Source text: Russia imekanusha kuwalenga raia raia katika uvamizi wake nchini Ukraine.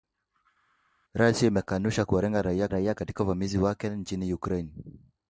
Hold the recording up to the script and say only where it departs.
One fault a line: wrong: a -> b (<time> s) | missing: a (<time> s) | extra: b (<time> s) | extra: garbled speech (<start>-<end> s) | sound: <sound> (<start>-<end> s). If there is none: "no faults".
no faults